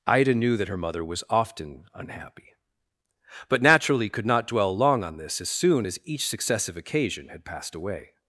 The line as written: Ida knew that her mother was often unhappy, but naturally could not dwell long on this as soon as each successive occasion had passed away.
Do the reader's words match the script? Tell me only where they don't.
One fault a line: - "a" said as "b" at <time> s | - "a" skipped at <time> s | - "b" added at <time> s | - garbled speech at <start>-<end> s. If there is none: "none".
none